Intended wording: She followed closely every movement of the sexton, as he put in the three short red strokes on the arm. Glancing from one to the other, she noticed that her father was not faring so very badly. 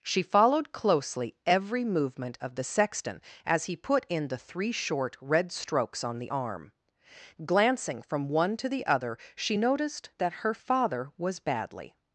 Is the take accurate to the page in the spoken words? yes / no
no